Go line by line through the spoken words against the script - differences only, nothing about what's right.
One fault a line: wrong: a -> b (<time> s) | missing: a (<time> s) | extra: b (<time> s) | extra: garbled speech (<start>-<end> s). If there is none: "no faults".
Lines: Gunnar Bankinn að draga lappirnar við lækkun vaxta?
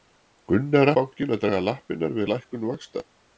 no faults